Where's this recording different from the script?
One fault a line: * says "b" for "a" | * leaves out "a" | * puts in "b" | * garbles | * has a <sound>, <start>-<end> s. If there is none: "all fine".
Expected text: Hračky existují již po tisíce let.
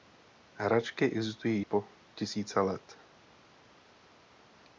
* leaves out "již"